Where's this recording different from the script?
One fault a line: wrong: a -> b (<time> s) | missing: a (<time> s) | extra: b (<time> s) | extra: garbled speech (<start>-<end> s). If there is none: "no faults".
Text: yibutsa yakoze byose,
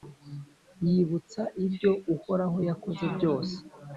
extra: ibyo uhoraho (1.6 s)